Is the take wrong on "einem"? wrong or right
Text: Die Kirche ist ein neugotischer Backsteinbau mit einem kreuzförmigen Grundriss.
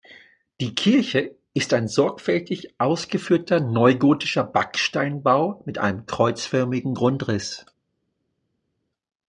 right